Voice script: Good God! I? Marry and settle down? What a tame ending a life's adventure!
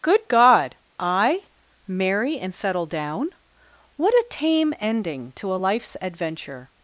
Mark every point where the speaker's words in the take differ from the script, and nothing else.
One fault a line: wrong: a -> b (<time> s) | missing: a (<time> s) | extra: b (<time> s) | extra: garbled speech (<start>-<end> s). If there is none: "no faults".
extra: to (5.4 s)